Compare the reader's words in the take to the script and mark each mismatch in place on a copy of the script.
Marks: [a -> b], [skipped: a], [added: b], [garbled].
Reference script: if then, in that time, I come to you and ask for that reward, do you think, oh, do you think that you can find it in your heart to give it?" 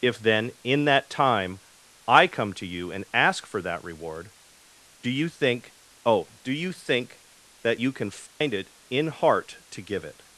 if then, in that time, I come to you and ask for that reward, do you think, oh, do you think that you can find it in [skipped: your] heart to give it?"